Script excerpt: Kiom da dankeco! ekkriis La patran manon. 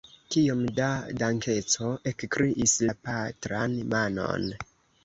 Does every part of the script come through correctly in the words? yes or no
yes